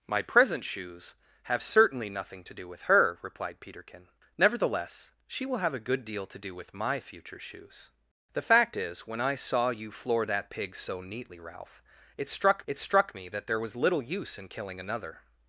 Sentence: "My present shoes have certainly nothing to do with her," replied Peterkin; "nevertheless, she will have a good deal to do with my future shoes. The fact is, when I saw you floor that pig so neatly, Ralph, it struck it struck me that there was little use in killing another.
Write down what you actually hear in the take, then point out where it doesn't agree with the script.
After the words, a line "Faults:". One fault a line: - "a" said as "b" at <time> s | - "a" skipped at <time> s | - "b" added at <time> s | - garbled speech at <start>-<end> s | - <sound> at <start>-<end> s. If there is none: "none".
"My present shoes have certainly nothing to do with her," replied Peterkin; "nevertheless, she will have a good deal to do with my future shoes. The fact is, when I saw you floor that pig so neatly, Ralph, it struck it struck me that there was little use in killing another.
Faults:
none